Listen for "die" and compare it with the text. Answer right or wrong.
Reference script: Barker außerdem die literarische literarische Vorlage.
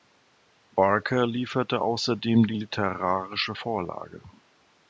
right